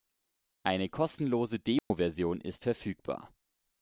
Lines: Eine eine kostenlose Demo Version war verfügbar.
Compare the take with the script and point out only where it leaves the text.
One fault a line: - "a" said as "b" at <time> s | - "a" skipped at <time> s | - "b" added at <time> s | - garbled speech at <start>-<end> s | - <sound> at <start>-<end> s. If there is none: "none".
- "eine" skipped at 0.9 s
- dropout at 1.8-1.9 s
- "war" said as "ist" at 2.4 s